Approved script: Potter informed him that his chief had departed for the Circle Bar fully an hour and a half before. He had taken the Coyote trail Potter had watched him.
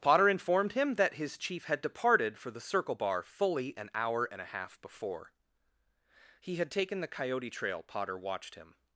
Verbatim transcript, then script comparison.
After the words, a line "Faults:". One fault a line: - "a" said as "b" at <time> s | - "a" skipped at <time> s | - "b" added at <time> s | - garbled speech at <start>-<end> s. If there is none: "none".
Potter informed him that his chief had departed for the Circle Bar fully an hour and a half before. He had taken the Coyote trail Potter watched him.
Faults:
- "had" skipped at 8.2 s